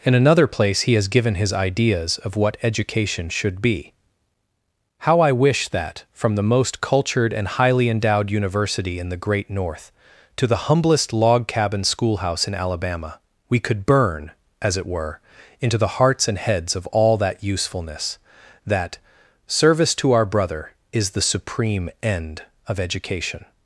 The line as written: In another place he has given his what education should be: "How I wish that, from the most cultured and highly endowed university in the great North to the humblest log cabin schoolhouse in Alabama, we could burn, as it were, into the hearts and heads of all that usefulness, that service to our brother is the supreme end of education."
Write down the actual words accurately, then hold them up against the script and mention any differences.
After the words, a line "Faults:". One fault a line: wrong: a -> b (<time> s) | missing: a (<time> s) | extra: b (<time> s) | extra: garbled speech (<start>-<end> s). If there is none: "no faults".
In another place he has given his ideas of what education should be: "How I wish that, from the most cultured and highly endowed university in the great North to the humblest log cabin schoolhouse in Alabama, we could burn, as it were, into the hearts and heads of all that usefulness, that service to our brother is the supreme end of education."
Faults:
extra: ideas of (1.5 s)